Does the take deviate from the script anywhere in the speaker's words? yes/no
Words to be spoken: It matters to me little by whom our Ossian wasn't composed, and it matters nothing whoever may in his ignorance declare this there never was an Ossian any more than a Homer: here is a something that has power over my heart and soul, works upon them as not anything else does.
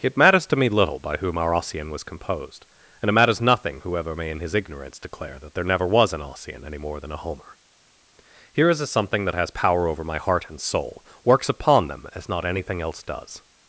yes